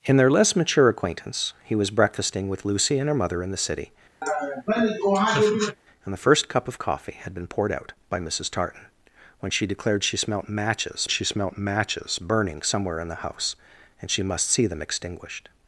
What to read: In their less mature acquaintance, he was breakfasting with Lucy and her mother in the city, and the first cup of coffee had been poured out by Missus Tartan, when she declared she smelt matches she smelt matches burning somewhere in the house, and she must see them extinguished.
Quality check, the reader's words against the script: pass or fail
pass